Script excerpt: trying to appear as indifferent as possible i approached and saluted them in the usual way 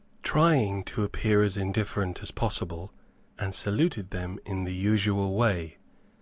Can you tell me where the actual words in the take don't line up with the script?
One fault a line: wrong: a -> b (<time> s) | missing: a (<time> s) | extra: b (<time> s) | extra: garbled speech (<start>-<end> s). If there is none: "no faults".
missing: i approached (2.9 s)